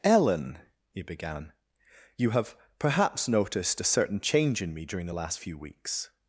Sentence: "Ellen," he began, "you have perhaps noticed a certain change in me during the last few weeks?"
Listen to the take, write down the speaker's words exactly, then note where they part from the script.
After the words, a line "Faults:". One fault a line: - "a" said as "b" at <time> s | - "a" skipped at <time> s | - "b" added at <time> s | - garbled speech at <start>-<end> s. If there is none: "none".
"Ellen," he began, "you have perhaps noticed a certain change in me during the last few weeks?"
Faults:
none